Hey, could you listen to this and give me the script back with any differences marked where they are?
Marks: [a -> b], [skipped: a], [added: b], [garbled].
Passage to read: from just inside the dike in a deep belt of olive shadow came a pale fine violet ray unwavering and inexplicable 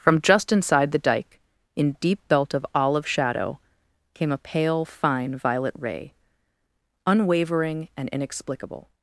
from just inside the dike in [skipped: a] deep belt of olive shadow came a pale fine violet ray unwavering and inexplicable